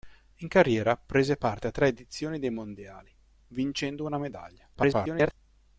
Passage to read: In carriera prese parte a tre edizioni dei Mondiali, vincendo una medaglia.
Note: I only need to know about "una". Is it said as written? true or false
true